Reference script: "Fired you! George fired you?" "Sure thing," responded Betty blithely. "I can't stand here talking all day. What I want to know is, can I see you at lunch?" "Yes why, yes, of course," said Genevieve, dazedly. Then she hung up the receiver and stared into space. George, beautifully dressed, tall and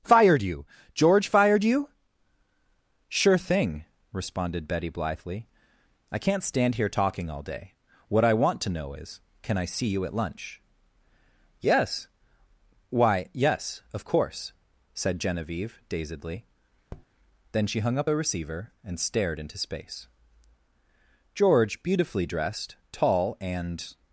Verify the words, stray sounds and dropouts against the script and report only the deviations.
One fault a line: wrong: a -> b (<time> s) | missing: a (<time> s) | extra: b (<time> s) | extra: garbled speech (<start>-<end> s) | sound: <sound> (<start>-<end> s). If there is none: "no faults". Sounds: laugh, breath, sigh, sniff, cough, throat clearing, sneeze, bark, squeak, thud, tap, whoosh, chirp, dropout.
sound: tap (16.9-17.1 s)